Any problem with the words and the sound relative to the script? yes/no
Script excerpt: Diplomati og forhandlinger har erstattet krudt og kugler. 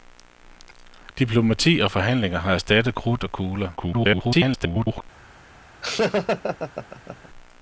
yes